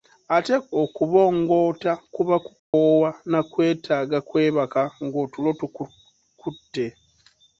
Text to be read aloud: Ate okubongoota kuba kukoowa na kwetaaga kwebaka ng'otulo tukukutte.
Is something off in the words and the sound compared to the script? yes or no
yes